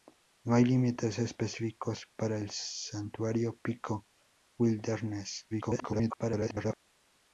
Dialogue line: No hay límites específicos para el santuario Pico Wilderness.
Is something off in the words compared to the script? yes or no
yes